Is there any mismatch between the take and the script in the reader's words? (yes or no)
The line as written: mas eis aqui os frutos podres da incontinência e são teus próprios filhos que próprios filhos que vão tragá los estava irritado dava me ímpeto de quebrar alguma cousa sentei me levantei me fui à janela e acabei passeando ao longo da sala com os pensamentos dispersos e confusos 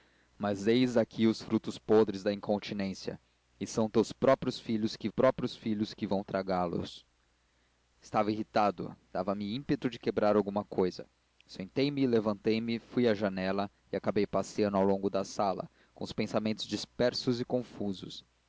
no